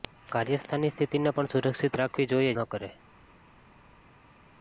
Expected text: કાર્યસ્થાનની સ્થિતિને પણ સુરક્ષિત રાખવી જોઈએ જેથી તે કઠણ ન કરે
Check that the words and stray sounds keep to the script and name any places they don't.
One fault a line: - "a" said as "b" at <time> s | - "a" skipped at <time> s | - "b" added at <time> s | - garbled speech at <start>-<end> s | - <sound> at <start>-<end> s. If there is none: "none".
- "જેથી તે કઠણ" skipped at 2.5 s